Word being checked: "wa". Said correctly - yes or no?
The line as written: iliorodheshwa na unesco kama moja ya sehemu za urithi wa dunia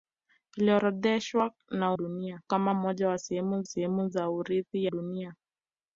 no